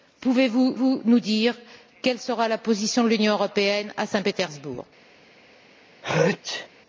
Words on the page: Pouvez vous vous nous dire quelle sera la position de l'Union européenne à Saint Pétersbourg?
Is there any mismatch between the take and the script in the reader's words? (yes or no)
no